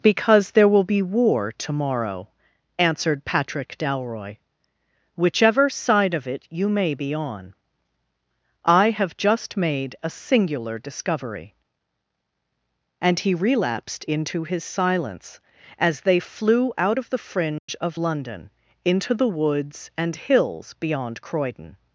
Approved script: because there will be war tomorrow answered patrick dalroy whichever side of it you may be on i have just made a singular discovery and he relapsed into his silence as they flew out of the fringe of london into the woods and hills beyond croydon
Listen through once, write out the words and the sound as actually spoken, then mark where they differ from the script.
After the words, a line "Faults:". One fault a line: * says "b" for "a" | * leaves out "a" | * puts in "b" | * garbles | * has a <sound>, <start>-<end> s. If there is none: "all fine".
because there will be war tomorrow answered patrick dalroy whichever side of it you may be on i have just made a singular discovery and he relapsed into his silence as they flew out of the fringe of london into the woods and hills beyond croydon
Faults:
* has a dropout, 17.6-17.7 s